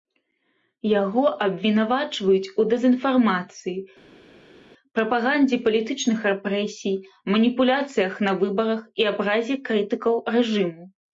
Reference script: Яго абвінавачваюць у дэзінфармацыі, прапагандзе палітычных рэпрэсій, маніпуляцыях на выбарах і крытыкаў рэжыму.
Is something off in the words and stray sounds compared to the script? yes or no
yes